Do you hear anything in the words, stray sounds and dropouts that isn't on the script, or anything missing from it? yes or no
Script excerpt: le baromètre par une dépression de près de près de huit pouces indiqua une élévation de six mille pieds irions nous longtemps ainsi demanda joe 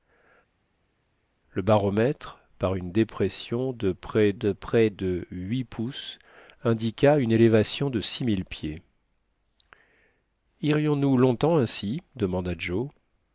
no